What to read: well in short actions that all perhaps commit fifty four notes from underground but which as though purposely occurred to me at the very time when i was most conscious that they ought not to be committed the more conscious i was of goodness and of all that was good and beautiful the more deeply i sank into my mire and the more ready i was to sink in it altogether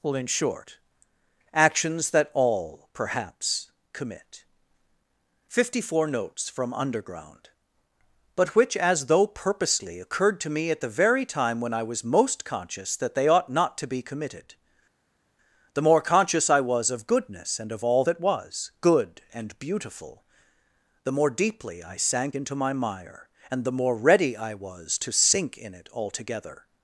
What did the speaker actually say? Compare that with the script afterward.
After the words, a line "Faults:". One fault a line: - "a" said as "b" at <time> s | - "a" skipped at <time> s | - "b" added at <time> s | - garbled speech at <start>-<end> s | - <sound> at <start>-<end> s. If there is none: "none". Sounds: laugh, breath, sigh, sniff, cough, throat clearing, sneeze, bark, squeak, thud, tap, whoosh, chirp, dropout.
well in short actions that all perhaps commit fifty four notes from underground but which as though purposely occurred to me at the very time when i was most conscious that they ought not to be committed the more conscious i was of goodness and of all that was good and beautiful the more deeply i sank into my mire and the more ready i was to sink in it altogether
Faults:
none